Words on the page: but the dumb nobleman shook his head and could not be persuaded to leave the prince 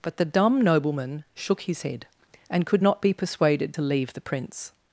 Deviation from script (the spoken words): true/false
false